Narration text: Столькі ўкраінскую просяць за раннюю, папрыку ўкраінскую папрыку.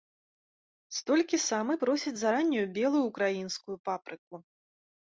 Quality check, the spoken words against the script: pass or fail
fail